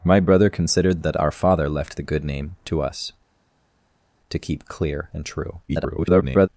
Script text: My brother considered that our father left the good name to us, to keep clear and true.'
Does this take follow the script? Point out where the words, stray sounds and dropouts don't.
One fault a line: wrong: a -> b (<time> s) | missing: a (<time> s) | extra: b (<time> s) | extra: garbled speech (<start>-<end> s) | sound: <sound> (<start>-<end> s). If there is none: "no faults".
extra: garbled speech (5.7-6.5 s)